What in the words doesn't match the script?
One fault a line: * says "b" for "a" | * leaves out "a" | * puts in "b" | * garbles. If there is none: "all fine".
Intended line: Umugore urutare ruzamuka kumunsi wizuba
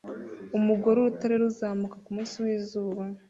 all fine